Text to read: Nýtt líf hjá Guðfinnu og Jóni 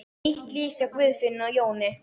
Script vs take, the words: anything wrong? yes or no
no